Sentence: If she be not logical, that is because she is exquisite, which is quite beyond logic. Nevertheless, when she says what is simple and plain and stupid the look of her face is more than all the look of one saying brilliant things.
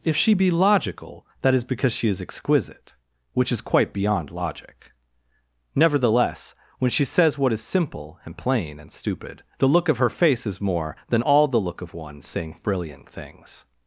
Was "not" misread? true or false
true